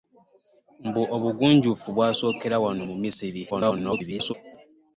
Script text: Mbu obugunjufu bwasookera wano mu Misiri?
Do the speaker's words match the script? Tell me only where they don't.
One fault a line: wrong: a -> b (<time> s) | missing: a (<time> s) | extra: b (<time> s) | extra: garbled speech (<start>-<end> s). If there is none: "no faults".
extra: garbled speech (3.5-4.3 s)